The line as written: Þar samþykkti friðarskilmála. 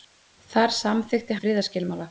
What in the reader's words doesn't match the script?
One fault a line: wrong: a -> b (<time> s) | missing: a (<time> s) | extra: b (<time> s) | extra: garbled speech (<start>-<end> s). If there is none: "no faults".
no faults